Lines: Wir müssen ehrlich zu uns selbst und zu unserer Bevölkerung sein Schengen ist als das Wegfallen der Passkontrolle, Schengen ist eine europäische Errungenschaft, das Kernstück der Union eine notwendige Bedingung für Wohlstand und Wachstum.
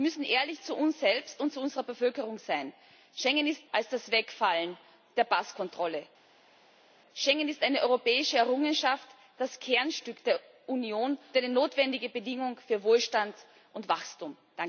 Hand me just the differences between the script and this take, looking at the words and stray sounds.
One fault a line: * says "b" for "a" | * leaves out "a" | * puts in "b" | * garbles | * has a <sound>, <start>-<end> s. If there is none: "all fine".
all fine